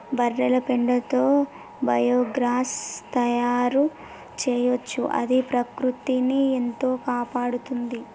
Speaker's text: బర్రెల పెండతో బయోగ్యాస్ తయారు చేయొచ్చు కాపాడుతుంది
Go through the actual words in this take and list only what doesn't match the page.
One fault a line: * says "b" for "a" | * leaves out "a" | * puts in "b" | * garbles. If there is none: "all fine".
* puts in "అది ప్రకృతిని ఎంతో"